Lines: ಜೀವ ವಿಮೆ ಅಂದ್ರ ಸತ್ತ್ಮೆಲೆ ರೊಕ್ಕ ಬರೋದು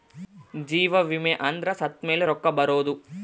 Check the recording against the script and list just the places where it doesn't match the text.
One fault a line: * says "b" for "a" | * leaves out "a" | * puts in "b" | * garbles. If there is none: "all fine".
all fine